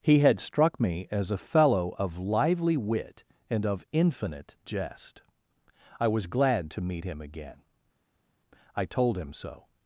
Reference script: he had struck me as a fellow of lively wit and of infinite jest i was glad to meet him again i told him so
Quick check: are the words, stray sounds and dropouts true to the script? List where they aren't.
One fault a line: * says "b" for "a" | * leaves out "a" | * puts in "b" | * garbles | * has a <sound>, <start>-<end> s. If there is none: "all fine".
all fine